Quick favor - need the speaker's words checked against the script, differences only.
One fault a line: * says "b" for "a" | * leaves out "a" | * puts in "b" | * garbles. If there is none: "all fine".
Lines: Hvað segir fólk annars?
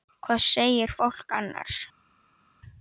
all fine